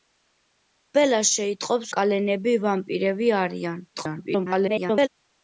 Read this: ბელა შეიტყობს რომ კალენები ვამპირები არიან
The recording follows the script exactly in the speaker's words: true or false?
false